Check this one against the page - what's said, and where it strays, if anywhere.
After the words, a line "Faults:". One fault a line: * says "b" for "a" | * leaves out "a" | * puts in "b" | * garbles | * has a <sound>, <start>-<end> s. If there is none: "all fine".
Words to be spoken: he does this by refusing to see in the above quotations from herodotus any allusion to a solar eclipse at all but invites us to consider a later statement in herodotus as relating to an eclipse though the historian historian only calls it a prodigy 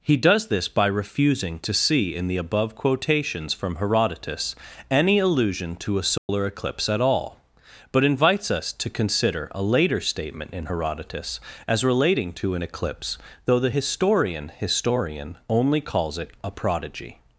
he does this by refusing to see in the above quotations from herodotus any allusion to a solar eclipse at all but invites us to consider a later statement in herodotus as relating to an eclipse though the historian historian only calls it a prodigy
Faults:
* has a dropout, 6.2-6.3 s